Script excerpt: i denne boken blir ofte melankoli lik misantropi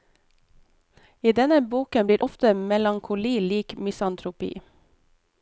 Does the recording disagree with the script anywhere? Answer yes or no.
no